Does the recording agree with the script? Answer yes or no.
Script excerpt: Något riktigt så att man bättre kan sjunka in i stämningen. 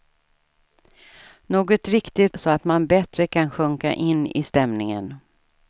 yes